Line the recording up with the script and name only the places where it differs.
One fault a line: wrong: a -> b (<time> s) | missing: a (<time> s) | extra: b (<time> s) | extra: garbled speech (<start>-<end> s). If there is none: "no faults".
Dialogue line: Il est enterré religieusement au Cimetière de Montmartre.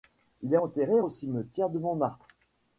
missing: religieusement (1.0 s)